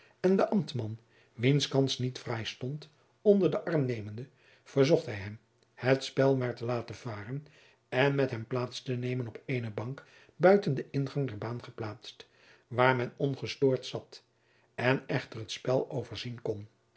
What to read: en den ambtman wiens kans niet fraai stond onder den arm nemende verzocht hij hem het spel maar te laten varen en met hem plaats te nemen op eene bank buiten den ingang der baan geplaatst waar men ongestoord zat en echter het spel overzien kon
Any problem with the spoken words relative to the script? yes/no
no